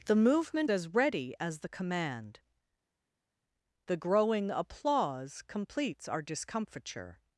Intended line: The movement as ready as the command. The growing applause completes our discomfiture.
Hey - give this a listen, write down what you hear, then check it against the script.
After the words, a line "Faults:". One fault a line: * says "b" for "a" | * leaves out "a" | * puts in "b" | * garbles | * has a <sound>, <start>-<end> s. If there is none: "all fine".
The movement as ready as the command. The growing applause completes our discomfiture.
Faults:
all fine